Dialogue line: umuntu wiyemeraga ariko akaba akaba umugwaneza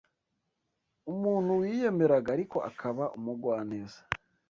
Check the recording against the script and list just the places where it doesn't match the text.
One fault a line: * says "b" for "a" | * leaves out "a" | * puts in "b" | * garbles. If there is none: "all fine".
* leaves out "akaba"